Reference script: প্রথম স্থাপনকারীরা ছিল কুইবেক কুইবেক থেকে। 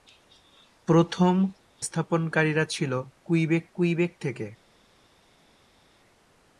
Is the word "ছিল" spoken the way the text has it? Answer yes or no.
yes